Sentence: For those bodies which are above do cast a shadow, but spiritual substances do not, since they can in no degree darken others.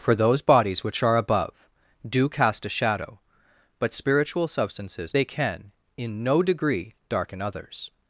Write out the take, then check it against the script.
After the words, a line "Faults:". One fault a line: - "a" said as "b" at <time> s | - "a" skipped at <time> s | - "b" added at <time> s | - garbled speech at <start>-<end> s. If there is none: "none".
For those bodies which are above do cast a shadow, but spiritual substances they can in no degree darken others.
Faults:
- "do not since" skipped at 5.1 s